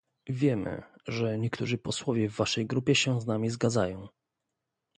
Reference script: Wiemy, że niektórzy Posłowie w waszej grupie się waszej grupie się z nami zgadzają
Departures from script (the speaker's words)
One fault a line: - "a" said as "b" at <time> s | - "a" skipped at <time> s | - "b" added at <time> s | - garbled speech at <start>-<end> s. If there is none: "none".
- "waszej grupie się" skipped at 3.2 s